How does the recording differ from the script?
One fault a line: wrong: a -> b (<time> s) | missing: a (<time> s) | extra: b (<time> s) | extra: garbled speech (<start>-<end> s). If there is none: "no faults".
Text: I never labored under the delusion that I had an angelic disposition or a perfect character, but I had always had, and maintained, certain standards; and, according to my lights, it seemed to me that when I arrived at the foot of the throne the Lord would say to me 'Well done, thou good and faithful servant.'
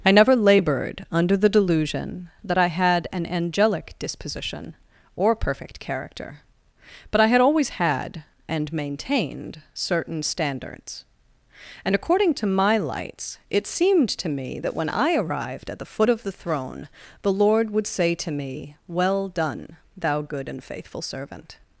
missing: a (5.3 s)